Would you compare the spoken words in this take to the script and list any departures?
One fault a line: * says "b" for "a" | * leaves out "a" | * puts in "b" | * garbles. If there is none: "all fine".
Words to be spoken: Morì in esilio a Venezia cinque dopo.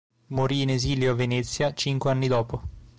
* puts in "anni"